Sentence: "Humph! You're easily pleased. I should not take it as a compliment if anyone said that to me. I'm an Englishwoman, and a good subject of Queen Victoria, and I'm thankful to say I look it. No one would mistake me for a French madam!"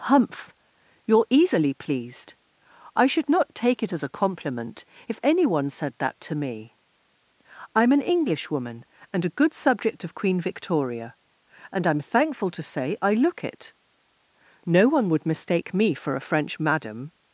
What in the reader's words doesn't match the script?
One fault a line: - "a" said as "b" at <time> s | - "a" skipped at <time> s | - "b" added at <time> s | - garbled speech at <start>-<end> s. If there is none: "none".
none